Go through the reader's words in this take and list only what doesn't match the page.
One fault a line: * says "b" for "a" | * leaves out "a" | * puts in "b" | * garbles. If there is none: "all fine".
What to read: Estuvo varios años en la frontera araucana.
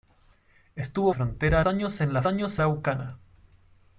* says "frontera" for "varios"
* says "años" for "frontera"